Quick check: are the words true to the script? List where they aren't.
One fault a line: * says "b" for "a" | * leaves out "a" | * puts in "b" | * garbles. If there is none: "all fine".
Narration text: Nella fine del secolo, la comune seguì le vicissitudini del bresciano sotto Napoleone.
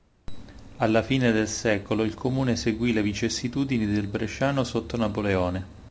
* says "Alla" for "Nella"
* says "il" for "la"